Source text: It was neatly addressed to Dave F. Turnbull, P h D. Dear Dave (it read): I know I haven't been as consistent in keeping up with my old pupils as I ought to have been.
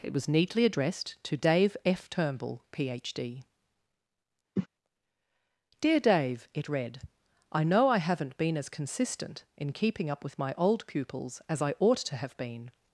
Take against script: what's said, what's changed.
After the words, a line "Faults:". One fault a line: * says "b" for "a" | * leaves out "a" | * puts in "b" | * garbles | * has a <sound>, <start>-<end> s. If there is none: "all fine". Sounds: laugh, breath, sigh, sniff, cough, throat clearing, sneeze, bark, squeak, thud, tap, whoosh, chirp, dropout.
It was neatly addressed to Dave F. Turnbull, P h D. Dear Dave (it read): I know I haven't been as consistent in keeping up with my old pupils as I ought to have been.
Faults:
* has a cough, 4.6-4.7 s